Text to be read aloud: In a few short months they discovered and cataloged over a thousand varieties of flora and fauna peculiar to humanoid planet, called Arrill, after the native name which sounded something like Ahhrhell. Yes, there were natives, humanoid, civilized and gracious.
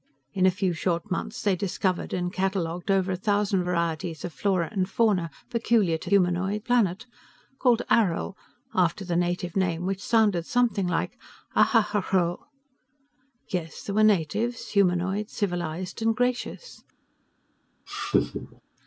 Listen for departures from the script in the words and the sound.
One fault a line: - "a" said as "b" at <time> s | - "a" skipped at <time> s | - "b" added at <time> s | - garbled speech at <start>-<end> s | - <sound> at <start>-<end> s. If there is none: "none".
- laugh at 17.9-18.6 s